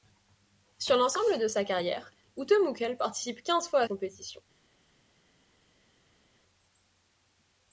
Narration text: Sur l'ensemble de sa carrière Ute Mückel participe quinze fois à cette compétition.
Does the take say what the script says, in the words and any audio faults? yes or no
no